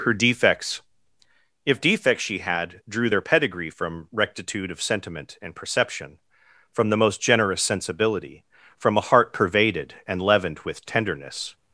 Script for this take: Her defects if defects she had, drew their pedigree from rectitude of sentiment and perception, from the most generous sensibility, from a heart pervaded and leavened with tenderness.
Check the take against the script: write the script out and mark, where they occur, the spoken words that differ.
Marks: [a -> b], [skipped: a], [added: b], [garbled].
Her defects if defects she had, drew their pedigree from rectitude of sentiment and perception, from the most generous sensibility, from a heart pervaded and leavened with tenderness.